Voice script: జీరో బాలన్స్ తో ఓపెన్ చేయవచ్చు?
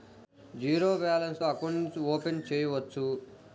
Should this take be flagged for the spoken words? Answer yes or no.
yes